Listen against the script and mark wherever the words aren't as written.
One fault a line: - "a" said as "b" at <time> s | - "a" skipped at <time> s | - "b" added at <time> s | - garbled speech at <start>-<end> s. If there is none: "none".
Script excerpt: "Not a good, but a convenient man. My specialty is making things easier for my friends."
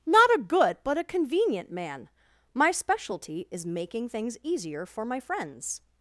none